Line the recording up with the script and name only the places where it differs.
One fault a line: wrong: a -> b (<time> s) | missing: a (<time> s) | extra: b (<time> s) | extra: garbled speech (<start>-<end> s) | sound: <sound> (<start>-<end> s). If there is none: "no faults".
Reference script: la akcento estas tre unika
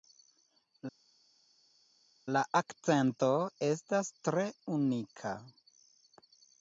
no faults